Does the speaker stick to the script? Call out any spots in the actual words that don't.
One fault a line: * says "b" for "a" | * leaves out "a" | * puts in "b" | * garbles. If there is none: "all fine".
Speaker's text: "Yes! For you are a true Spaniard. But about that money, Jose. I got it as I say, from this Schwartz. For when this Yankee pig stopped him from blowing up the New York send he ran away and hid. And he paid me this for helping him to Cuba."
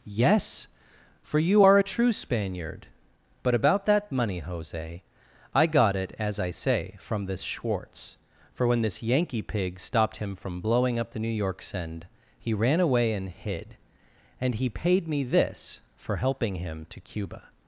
all fine